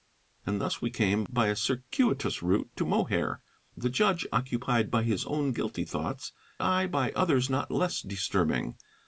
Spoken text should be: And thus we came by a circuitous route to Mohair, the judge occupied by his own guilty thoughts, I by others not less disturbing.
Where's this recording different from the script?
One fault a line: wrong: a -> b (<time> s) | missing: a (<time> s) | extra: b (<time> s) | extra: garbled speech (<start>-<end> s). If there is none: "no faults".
no faults